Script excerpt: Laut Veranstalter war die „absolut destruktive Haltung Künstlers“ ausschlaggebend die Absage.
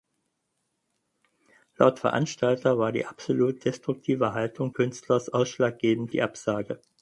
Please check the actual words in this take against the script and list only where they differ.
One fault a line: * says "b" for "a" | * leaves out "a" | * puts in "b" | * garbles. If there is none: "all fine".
all fine